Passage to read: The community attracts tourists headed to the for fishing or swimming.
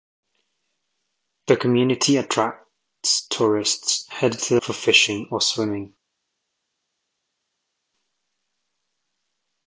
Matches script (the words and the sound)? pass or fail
pass